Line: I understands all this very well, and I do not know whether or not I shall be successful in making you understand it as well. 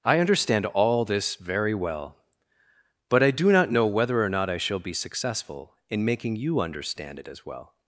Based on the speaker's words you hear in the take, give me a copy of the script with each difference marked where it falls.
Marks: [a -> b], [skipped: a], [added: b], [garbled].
I [understands -> understand] all this very well, [and -> but] I do not know whether or not I shall be successful in making you understand it as well.